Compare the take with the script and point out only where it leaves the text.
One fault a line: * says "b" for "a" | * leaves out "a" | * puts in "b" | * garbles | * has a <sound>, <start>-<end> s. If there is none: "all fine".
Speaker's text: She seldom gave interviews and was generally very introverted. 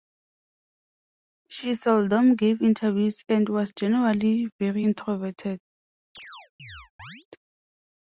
* has a chirp, 6.1-7.3 s